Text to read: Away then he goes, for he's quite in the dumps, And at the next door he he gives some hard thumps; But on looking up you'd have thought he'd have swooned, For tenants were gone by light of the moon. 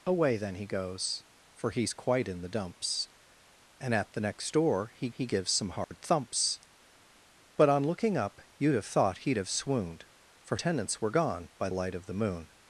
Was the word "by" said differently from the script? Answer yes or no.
no